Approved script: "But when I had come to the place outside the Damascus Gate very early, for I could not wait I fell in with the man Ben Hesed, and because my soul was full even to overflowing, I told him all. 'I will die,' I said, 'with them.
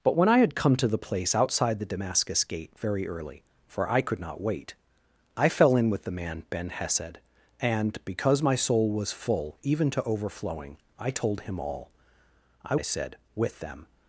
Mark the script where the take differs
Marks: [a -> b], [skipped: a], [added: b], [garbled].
"But when I had come to the place outside the Damascus Gate very early, for I could not wait I fell in with the man Ben Hesed, and because my soul was full even to overflowing, I told him all. 'I [skipped: will die,'] I said, 'with them.